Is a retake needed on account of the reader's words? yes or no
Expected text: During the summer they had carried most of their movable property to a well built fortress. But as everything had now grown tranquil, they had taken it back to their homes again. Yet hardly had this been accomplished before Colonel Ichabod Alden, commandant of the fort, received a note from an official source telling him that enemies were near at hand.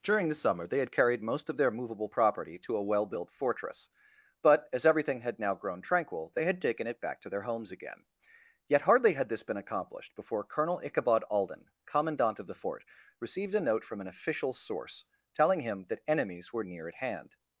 no